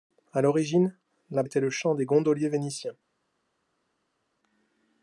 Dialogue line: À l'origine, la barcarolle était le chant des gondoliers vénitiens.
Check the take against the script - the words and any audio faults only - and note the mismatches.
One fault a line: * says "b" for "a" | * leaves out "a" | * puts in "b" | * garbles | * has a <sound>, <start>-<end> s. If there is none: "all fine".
* leaves out "barcarolle"